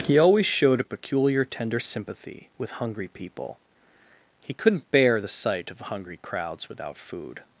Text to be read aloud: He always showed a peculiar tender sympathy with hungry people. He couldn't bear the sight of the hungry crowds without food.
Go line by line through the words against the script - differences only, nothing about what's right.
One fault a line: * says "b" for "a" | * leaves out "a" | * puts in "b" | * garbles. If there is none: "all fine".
* leaves out "the"